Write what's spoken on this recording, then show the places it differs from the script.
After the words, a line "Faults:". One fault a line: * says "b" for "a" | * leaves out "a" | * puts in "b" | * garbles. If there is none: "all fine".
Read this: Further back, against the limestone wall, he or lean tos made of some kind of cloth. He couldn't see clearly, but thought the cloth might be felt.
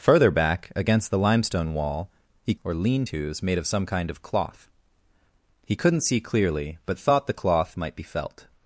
Further back, against the limestone wall, he or lean tos made of some kind of cloth. He couldn't see clearly, but thought the cloth might be felt.
Faults:
all fine